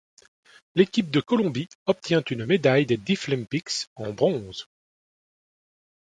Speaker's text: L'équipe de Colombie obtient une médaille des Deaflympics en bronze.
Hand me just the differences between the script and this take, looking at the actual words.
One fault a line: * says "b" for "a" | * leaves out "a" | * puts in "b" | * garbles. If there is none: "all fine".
all fine